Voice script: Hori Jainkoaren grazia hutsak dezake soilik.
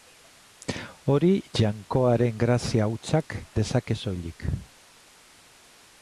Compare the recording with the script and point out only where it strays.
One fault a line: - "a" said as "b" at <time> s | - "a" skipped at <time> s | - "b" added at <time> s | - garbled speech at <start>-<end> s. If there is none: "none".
none